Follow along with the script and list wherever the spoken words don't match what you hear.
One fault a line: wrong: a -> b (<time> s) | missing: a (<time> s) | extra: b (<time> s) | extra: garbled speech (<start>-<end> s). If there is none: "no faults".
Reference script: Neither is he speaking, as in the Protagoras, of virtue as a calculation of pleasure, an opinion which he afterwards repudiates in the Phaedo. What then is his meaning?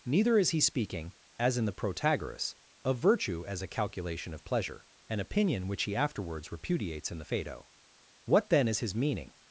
no faults